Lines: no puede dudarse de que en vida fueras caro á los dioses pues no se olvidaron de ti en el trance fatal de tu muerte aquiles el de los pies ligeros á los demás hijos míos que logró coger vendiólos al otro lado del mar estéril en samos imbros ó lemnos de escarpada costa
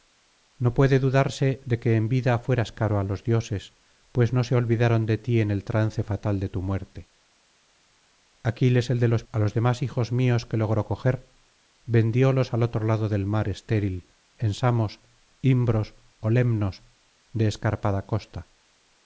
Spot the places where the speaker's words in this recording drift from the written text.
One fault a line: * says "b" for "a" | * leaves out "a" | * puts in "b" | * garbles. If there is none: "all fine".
* leaves out "pies ligeros"